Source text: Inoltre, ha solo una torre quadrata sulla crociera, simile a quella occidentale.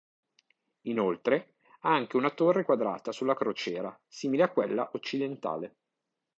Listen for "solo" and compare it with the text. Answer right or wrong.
wrong